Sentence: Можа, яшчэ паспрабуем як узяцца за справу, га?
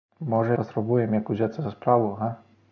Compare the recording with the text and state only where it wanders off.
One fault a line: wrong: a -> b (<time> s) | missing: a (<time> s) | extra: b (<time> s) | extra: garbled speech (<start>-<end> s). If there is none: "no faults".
missing: яшчэ (0.6 s)